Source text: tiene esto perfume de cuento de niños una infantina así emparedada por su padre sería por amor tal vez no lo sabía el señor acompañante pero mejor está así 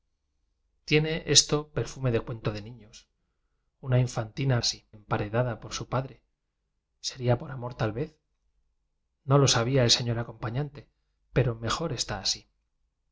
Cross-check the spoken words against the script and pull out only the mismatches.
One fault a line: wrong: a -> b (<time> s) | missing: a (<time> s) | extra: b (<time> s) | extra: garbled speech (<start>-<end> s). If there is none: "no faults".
no faults